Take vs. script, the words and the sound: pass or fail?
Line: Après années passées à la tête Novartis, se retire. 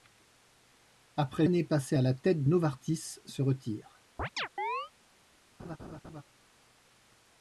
fail